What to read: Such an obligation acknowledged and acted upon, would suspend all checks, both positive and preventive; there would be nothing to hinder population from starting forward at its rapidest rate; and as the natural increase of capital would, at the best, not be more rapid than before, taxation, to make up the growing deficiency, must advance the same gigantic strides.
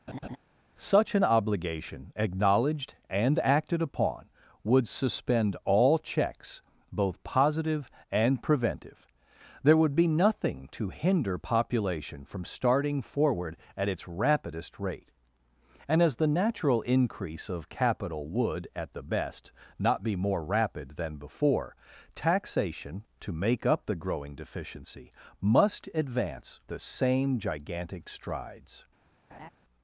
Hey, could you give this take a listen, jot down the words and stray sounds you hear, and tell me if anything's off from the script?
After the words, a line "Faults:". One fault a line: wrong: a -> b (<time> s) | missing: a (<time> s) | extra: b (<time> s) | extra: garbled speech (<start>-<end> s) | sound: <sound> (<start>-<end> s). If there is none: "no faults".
Such an obligation acknowledged and acted upon, would suspend all checks, both positive and preventive; there would be nothing to hinder population from starting forward at its rapidest rate; and as the natural increase of capital would, at the best, not be more rapid than before, taxation, to make up the growing deficiency, must advance the same gigantic strides.
Faults:
sound: laugh (0.1-0.4 s)
sound: laugh (29.3-29.5 s)